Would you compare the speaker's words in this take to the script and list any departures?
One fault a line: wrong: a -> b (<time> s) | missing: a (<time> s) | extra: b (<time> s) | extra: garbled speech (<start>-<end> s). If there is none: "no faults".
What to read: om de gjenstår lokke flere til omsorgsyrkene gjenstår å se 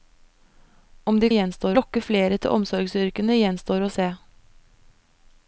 no faults